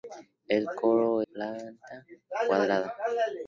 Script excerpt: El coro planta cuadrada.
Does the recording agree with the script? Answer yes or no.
yes